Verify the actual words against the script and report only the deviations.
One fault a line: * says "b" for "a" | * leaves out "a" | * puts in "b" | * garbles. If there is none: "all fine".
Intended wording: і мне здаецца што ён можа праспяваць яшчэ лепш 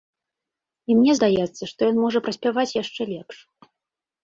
all fine